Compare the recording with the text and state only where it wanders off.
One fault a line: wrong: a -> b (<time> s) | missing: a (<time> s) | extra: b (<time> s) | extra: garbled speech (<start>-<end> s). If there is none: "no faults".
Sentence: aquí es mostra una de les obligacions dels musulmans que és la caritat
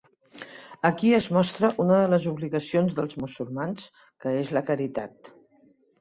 no faults